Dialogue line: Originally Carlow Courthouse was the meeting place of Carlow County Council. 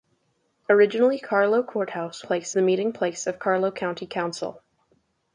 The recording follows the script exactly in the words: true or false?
false